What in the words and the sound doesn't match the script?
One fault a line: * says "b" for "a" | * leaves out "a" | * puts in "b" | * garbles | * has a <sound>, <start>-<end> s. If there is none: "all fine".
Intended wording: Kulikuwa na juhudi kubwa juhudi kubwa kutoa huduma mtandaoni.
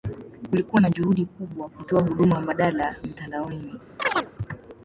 * leaves out "juhudi kubwa"
* puts in "mbadala"
* has a chirp, 4.0-4.3 s